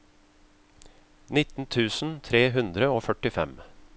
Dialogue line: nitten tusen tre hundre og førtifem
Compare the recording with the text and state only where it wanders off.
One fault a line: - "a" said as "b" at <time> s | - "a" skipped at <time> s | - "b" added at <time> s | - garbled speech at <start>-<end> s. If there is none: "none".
none